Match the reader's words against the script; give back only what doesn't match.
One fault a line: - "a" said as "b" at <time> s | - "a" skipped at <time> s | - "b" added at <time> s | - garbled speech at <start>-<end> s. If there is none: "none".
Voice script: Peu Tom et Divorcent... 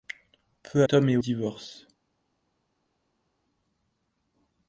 none